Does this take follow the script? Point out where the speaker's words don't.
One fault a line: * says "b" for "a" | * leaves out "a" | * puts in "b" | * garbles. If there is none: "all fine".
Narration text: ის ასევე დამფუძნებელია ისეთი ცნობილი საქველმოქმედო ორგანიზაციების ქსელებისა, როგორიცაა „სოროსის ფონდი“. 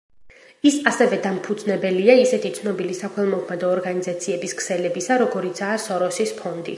all fine